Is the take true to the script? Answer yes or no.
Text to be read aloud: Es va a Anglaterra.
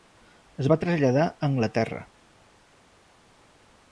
no